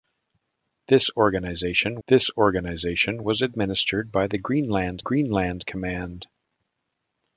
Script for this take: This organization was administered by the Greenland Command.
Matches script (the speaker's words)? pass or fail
fail